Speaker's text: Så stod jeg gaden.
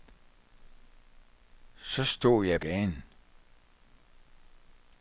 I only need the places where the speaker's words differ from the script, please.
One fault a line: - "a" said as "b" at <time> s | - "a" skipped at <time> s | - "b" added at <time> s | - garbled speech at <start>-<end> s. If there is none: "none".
none